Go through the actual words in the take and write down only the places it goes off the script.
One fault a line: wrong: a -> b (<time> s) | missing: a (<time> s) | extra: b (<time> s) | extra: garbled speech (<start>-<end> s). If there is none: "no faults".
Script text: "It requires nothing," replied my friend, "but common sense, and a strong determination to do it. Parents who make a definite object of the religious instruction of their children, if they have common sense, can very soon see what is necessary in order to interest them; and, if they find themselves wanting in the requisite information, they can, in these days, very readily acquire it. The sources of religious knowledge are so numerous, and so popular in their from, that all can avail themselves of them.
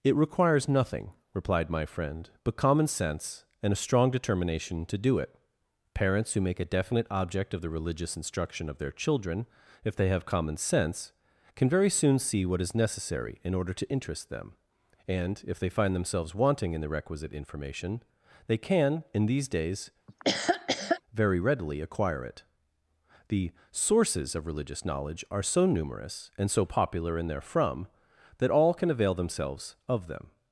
no faults